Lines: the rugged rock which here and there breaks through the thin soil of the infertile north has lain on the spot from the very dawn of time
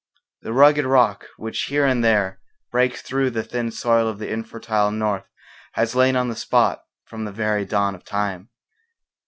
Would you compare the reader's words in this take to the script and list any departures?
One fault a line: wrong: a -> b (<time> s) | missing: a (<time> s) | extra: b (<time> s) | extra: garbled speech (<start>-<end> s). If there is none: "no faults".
no faults